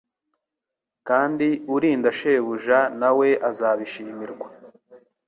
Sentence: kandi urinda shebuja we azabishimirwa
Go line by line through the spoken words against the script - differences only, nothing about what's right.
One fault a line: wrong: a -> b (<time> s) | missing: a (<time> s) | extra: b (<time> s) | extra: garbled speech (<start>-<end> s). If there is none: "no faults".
extra: na (3.0 s)